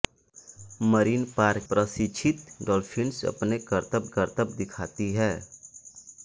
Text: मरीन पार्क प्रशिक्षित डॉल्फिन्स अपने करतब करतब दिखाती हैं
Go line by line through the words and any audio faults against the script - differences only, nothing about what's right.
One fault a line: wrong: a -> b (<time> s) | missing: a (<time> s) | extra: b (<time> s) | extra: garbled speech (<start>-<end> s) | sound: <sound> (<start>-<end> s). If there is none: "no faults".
no faults